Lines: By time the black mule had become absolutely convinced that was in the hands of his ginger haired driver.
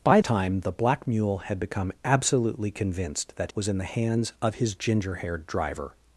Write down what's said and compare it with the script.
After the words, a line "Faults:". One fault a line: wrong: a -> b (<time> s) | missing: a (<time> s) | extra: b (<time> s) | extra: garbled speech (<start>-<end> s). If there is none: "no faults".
By time the black mule had become absolutely convinced that was in the hands of his ginger haired driver.
Faults:
no faults